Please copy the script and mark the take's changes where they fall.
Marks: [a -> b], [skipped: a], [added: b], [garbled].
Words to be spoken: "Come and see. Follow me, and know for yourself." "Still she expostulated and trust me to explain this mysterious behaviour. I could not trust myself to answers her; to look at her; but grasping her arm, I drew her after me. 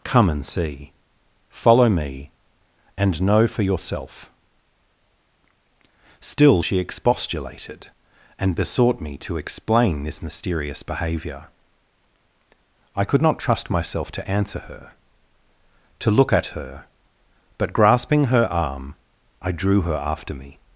"Come and see. Follow me, and know for yourself." "Still she expostulated and [trust -> besought] me to explain this mysterious behaviour. I could not trust myself to [answers -> answer] her; to look at her; but grasping her arm, I drew her after me.